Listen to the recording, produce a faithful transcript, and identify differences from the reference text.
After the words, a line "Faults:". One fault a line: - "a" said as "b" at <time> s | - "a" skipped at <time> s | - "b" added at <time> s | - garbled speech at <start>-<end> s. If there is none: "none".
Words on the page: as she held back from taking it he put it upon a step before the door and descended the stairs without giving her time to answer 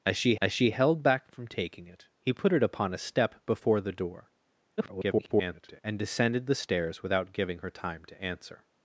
as she as she held back from taking it he put it upon a step before the door [garbled] and descended the stairs without giving her time to answer
Faults:
- "as she" added at 0.4 s
- garbled speech at 4.8-5.8 s